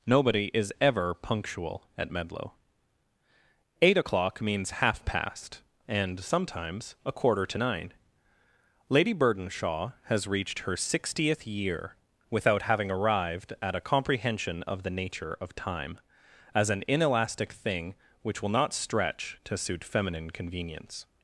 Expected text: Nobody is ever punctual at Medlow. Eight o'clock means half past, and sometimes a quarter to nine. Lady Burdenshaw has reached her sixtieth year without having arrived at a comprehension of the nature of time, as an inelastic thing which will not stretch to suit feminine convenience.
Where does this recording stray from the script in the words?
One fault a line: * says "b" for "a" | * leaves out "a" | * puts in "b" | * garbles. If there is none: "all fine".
all fine